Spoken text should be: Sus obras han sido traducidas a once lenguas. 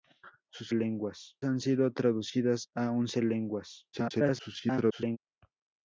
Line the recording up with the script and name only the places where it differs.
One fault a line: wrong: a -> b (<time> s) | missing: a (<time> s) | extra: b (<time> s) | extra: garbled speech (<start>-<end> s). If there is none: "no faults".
wrong: obras -> lenguas (0.7 s)
extra: garbled speech (3.9-5.2 s)